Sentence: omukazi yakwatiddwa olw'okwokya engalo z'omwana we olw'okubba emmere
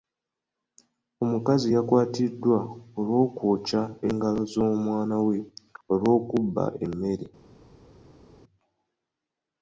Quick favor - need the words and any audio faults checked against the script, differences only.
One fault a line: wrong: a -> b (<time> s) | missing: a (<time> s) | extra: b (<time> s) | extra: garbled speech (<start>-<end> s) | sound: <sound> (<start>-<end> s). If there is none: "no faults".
no faults